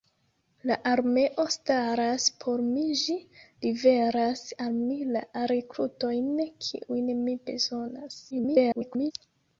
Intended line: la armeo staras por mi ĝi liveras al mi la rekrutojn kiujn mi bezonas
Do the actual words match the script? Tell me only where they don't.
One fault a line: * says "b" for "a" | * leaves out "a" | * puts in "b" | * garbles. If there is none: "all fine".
* garbles